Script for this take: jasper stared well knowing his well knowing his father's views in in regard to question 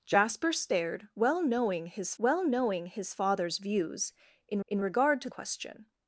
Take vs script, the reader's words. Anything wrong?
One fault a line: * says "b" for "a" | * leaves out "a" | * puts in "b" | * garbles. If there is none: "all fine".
all fine